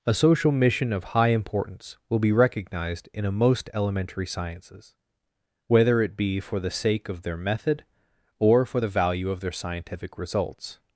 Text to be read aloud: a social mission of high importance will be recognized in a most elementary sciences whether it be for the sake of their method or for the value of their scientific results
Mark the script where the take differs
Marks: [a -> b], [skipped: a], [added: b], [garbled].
a social mission of high importance will be recognized in a most elementary sciences whether it be for the sake of their method or for the value of their scientific results